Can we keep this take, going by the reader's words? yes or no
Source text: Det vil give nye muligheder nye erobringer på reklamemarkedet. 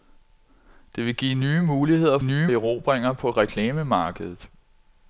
yes